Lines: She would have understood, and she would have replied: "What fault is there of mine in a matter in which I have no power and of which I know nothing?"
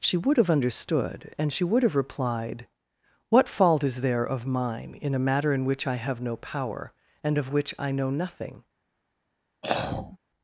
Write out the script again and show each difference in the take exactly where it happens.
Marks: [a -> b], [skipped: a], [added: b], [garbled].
She would have understood, and she would have replied: "What fault is there of mine in a matter in which I have no power and of which I know nothing?"